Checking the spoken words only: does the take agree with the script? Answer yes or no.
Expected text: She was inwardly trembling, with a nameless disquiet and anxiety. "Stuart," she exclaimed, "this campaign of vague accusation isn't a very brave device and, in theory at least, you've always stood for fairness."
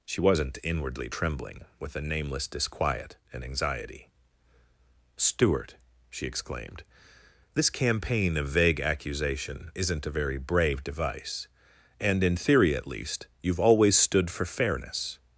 no